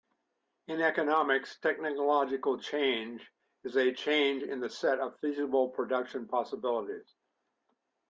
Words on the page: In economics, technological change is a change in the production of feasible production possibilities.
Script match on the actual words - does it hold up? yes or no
no